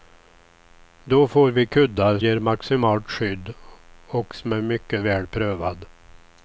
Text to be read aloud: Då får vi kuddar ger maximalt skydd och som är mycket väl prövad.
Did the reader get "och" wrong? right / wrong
right